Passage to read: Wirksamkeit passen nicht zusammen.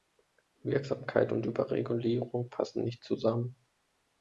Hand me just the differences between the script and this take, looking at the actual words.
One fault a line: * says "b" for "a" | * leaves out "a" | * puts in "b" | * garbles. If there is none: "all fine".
* puts in "und Überregulierung"